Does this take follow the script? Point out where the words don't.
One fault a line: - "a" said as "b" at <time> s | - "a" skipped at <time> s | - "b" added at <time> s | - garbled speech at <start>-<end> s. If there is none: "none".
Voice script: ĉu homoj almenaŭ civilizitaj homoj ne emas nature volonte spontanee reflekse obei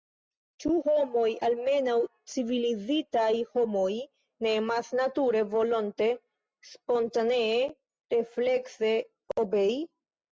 none